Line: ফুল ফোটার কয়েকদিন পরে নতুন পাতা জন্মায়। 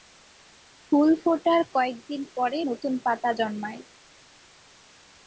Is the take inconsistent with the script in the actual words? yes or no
no